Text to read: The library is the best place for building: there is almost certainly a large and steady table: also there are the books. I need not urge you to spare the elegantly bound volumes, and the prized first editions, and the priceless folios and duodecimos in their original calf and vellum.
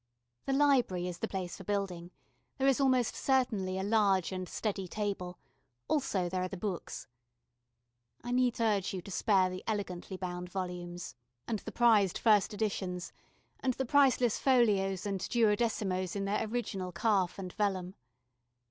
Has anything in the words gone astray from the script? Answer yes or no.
yes